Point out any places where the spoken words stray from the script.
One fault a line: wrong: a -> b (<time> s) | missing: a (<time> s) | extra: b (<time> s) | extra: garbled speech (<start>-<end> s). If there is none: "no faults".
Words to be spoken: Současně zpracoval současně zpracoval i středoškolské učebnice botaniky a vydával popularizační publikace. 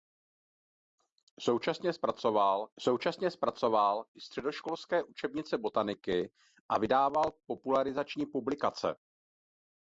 no faults